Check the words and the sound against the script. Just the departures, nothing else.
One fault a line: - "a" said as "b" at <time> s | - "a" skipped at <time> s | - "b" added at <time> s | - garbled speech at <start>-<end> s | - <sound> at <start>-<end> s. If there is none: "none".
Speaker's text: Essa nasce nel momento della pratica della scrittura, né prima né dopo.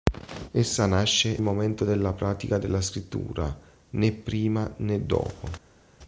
- "nel" skipped at 1.4 s